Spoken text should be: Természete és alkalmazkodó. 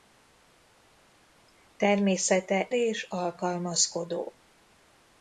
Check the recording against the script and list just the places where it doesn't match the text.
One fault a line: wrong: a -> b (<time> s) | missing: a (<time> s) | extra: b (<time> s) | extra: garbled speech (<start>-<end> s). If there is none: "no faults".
no faults